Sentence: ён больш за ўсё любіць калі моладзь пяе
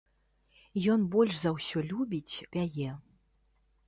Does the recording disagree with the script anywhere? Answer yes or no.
yes